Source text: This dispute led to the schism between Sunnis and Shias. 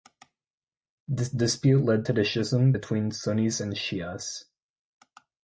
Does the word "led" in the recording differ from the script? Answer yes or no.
no